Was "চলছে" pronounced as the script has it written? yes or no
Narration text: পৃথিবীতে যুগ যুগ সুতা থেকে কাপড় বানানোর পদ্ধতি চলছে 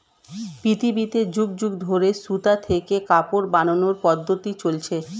yes